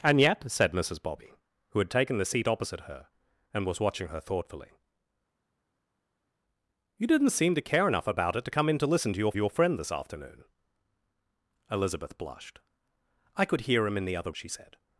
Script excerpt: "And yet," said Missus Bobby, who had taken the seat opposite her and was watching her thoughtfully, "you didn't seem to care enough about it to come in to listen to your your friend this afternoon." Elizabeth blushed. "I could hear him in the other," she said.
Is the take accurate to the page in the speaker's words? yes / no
yes